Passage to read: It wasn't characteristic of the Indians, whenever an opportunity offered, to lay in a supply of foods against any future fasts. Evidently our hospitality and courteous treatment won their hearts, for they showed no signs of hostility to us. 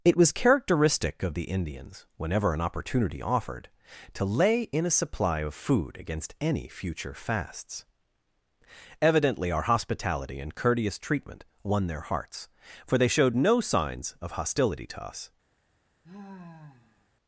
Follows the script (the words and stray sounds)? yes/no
no